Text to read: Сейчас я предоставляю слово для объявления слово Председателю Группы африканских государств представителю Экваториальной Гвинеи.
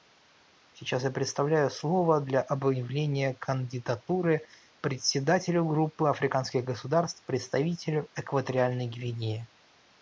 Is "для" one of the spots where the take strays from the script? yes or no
no